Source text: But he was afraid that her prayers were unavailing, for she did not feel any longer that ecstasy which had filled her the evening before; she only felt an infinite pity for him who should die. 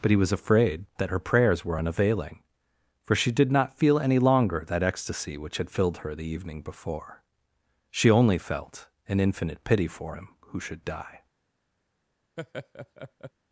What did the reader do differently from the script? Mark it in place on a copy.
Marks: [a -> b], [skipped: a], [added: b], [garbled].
But he was afraid that her prayers were unavailing, for she did not feel any longer that ecstasy which had filled her the evening before; she only felt an infinite pity for him who should die.